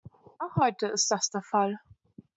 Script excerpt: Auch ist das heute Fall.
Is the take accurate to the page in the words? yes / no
no